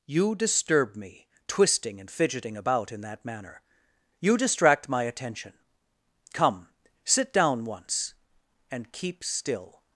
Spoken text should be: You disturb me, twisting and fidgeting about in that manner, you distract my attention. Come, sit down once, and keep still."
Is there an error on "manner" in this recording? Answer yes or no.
no